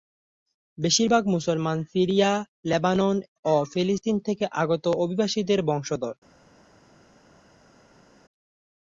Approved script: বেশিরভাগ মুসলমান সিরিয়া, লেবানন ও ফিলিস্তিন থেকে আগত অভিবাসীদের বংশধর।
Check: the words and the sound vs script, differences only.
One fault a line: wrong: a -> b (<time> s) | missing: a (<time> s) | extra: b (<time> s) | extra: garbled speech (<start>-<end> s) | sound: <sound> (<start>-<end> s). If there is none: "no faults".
no faults